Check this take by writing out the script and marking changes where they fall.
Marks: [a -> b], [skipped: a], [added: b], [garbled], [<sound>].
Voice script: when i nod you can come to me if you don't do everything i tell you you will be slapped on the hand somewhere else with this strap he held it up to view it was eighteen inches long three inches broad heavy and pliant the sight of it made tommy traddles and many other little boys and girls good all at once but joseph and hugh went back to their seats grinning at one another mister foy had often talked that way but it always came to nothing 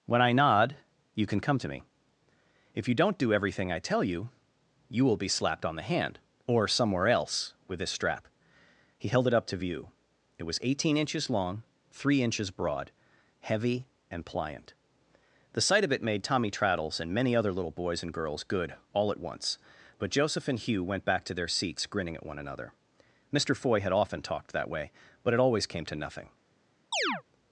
when i nod you can come to me if you don't do everything i tell you you will be slapped on the hand [added: or] somewhere else with this strap he held it up to view it was eighteen inches long three inches broad heavy and pliant the sight of it made tommy traddles and many other little boys and girls good all at once but joseph and hugh went back to their seats grinning at one another mister foy had often talked that way but it always came to nothing [chirp]